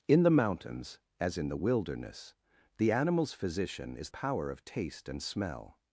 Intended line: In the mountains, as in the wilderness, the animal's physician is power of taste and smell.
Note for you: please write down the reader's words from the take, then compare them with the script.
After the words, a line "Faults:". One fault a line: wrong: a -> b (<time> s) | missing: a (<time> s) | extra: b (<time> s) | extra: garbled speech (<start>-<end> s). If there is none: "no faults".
In the mountains, as in the wilderness, the animal's physician is power of taste and smell.
Faults:
no faults